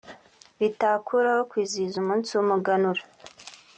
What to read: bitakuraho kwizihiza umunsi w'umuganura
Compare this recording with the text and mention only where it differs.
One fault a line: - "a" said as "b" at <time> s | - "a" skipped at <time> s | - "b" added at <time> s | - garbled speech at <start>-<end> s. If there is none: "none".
none